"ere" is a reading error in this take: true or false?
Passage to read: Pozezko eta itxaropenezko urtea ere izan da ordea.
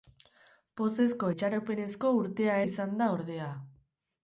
true